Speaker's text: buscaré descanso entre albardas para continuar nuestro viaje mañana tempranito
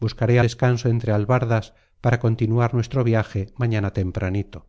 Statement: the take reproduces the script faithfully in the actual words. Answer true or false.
true